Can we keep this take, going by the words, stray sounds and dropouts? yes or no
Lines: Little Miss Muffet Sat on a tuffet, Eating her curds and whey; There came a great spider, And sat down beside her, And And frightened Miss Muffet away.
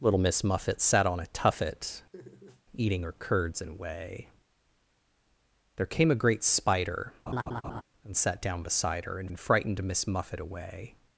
no